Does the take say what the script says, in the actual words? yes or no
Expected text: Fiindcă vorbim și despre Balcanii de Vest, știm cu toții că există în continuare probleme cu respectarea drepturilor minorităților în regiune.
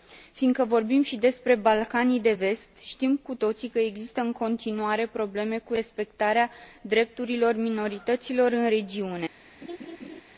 yes